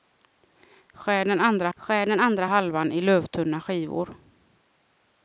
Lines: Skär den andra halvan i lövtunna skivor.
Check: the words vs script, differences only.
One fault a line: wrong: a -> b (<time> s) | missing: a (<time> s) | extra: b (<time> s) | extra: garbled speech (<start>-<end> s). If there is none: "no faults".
extra: skär den andra (1.8 s)